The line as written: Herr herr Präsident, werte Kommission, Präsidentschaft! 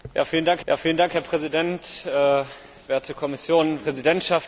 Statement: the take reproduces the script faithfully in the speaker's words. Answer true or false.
true